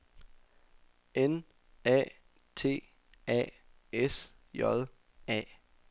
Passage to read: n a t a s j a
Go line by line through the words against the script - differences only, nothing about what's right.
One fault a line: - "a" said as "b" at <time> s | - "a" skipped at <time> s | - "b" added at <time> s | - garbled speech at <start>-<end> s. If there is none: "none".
none